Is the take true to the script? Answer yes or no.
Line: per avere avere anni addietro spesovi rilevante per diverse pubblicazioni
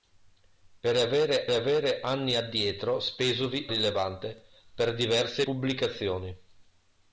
yes